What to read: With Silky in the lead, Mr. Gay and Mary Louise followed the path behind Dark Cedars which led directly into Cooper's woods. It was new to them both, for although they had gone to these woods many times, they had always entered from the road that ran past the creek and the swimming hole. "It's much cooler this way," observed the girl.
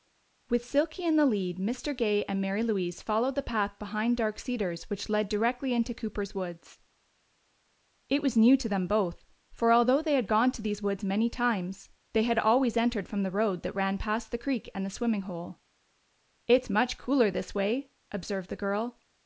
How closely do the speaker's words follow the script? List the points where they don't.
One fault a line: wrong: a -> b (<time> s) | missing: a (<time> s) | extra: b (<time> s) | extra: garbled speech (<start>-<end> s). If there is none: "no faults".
no faults